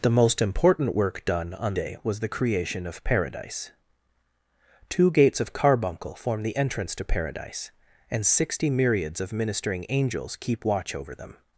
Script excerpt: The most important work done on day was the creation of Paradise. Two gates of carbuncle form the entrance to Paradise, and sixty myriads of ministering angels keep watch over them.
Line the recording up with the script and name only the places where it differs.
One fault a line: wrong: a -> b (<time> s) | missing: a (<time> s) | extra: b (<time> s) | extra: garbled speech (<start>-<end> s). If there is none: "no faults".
no faults